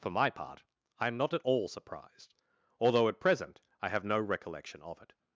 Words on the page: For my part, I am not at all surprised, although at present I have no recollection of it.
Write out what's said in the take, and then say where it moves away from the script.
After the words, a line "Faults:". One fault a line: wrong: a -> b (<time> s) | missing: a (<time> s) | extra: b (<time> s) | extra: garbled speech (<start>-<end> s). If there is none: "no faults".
For my part, I am not at all surprised, although at present I have no recollection of it.
Faults:
no faults